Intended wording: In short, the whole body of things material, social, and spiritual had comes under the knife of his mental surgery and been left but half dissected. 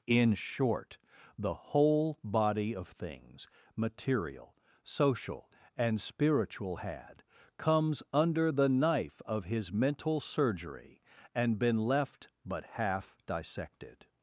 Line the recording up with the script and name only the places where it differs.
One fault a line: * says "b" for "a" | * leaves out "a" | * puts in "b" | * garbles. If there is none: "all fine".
all fine